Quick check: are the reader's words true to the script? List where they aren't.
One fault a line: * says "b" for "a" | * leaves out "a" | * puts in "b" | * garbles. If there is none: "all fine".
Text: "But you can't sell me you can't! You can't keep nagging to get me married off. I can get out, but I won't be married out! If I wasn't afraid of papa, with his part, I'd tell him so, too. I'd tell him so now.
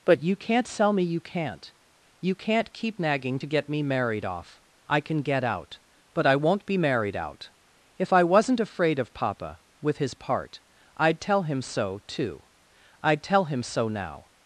all fine